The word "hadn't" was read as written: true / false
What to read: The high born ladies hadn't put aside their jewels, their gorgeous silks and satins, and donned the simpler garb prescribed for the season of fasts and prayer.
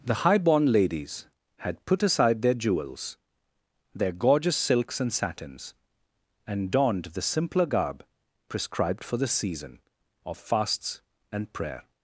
false